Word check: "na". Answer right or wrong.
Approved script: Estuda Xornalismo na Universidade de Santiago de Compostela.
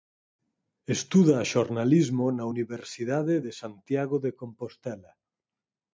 right